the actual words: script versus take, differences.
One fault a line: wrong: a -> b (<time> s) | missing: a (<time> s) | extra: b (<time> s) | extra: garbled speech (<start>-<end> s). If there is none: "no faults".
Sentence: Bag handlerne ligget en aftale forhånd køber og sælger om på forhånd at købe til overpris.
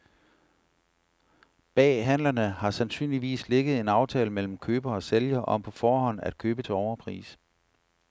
extra: har sandsynligvis (2.5 s)
wrong: forhånd -> mellem (4.3 s)